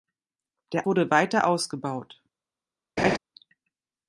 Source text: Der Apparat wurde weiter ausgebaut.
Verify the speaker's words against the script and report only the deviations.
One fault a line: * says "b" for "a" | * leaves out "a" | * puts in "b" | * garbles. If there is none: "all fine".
* leaves out "Apparat"